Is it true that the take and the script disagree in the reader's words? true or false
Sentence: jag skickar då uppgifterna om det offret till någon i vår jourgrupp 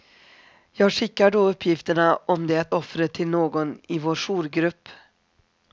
false